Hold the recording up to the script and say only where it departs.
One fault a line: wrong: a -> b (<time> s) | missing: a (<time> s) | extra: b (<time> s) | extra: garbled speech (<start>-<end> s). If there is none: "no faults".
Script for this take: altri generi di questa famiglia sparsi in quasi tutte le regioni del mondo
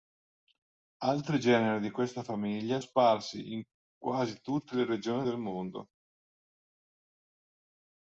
no faults